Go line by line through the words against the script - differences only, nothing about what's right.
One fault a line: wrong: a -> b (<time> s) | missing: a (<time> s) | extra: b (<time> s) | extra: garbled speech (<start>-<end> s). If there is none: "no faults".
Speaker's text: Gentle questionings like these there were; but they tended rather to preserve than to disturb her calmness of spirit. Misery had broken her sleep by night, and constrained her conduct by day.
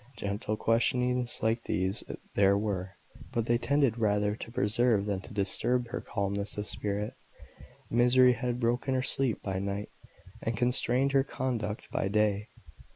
no faults